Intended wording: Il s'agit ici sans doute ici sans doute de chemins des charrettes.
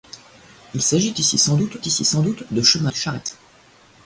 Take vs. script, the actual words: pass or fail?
pass